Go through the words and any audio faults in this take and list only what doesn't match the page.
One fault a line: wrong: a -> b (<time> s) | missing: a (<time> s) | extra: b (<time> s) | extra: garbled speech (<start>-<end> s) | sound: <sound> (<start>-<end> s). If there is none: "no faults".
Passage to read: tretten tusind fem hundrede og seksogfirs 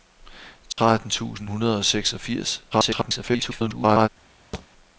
sound: dropout (0.7-0.8 s)
missing: fem (1.5 s)
extra: garbled speech (2.7-4.1 s)
sound: thud (4.5-4.7 s)